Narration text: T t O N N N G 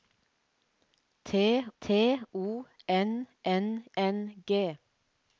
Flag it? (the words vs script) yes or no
no